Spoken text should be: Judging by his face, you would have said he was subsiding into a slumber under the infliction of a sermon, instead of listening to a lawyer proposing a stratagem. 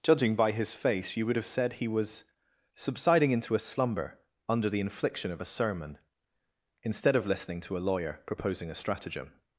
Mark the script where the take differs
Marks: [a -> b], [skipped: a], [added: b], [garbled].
Judging by his face, you would have said he was subsiding into a slumber under the infliction of a sermon, instead of listening to a lawyer proposing a stratagem.